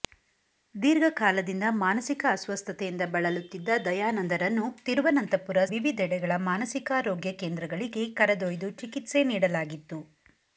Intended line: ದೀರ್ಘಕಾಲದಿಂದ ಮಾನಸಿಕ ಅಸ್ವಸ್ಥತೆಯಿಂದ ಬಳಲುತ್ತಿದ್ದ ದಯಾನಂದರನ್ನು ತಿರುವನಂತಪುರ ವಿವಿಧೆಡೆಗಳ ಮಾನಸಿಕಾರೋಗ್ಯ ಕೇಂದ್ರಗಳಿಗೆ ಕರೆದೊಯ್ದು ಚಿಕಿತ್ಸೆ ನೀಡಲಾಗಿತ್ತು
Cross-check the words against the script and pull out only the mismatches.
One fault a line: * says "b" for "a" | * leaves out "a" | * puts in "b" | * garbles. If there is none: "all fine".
all fine